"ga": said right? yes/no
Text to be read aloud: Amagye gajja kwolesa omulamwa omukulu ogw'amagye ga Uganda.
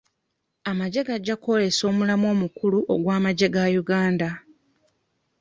yes